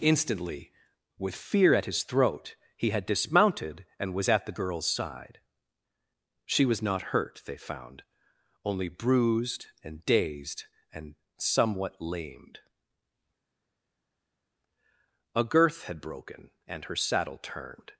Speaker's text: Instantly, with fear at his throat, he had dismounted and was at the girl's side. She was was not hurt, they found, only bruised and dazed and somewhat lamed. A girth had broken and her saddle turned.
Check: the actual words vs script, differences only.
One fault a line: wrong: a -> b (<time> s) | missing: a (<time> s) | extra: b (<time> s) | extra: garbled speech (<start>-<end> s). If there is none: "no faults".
missing: was (6.8 s)